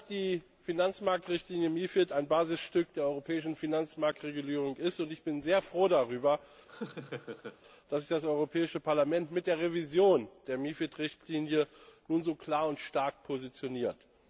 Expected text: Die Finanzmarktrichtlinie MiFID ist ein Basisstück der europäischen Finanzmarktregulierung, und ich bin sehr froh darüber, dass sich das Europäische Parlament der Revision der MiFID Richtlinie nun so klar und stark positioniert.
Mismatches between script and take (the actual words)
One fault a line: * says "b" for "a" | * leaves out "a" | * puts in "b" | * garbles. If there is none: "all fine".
* puts in "mit"